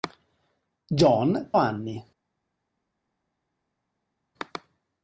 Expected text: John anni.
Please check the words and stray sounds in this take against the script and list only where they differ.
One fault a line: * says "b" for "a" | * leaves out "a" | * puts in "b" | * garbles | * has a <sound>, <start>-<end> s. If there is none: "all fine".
all fine